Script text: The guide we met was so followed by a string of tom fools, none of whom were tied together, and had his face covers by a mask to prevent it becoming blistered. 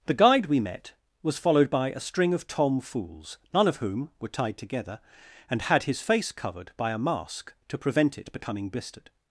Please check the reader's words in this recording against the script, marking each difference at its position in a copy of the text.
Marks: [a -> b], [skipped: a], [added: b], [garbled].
The guide we met was [skipped: so] followed by a string of tom fools, none of whom were tied together, and had his face [covers -> covered] by a mask to prevent it becoming blistered.